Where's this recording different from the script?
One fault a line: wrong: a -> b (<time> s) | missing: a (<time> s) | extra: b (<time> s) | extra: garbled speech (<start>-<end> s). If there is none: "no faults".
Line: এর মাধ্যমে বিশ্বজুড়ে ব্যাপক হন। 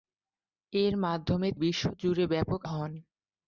no faults